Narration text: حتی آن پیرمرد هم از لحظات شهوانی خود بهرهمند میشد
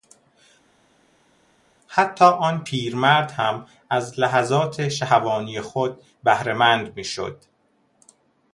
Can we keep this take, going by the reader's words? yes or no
yes